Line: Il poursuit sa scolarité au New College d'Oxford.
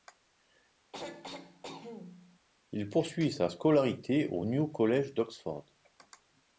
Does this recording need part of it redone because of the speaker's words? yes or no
no